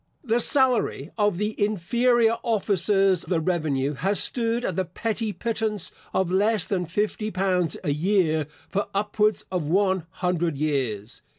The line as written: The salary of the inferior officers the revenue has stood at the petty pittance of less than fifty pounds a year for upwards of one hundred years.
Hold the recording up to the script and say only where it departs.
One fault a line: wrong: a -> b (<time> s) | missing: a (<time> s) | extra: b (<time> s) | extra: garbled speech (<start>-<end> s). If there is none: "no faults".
no faults